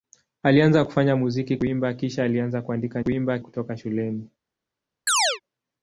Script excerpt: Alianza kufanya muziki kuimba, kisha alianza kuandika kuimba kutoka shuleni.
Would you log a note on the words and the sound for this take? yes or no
yes